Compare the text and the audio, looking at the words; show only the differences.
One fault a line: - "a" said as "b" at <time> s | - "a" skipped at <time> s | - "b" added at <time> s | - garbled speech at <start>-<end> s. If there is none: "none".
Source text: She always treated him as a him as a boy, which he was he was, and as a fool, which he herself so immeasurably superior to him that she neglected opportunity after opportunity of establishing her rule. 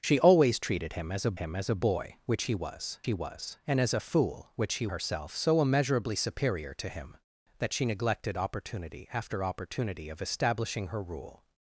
none